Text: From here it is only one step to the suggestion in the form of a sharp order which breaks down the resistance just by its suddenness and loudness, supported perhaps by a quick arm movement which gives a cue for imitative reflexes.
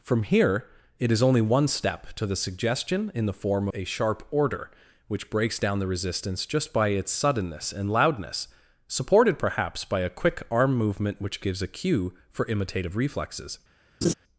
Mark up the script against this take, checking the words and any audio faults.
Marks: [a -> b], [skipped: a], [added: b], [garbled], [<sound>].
From here it is only one step to the suggestion in the form [skipped: of] a sharp order which breaks down the resistance just by its suddenness and loudness, supported perhaps by a quick arm movement which gives a cue for imitative reflexes. [laugh]